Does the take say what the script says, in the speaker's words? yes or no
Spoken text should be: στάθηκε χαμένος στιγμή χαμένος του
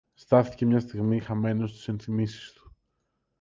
no